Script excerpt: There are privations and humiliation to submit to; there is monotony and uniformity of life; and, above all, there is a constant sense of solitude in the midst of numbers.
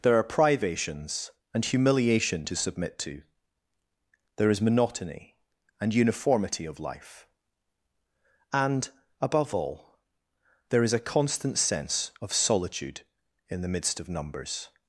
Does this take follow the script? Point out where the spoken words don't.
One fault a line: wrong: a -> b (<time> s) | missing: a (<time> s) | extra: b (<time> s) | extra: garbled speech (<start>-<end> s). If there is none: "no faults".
no faults